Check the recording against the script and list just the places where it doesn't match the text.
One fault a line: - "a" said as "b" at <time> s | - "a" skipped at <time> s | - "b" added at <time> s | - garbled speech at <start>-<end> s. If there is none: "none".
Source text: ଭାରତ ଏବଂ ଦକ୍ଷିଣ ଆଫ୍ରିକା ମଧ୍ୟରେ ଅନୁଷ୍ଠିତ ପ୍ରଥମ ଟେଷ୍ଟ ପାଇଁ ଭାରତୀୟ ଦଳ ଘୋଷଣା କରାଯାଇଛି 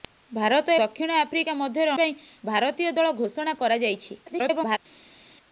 - "ଏବଂ" skipped at 0.8 s
- "ଅନୁଷ୍ଠିତ ପ୍ରଥମ ଟେଷ୍ଟ" skipped at 1.9 s
- garbled speech at 4.3-4.8 s